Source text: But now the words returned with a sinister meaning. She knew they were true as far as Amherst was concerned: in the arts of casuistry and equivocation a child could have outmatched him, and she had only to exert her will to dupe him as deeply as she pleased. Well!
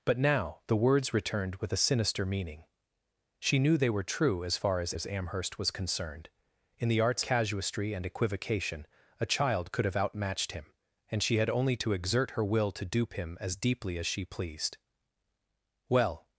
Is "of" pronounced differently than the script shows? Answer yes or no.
yes